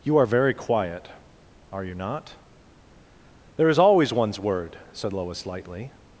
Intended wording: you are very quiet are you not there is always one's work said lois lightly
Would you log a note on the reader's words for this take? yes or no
yes